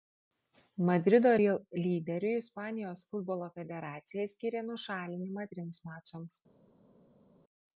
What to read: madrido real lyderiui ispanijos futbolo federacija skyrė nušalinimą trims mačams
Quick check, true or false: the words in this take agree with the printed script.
true